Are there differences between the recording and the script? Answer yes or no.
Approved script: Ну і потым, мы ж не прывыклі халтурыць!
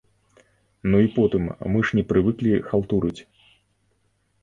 no